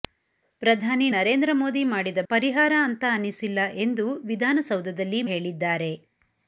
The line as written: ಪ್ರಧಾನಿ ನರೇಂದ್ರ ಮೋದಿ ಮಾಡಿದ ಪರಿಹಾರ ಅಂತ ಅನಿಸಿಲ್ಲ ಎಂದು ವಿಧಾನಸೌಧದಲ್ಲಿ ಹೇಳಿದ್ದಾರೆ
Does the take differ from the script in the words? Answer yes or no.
no